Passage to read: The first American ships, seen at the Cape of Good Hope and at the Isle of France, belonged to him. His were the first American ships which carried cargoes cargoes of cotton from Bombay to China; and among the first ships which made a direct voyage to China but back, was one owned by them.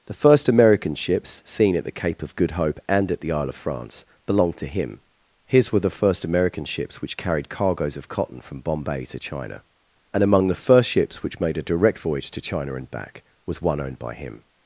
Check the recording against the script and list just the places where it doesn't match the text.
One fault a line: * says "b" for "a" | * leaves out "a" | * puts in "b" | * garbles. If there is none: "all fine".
* leaves out "cargoes"
* says "and" for "but"
* says "him" for "them"